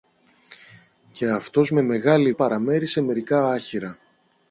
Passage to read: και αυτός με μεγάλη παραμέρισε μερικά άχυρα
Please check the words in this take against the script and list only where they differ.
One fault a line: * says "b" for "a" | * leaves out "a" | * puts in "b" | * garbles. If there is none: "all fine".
all fine